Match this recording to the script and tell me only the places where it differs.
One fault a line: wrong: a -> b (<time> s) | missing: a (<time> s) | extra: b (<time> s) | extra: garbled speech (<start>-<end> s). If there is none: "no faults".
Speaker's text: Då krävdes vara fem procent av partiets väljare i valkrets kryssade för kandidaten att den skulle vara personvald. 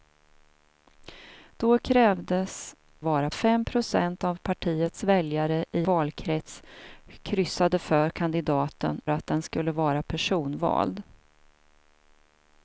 no faults